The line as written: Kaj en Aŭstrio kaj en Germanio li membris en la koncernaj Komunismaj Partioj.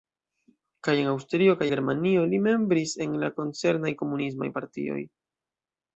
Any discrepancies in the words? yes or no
yes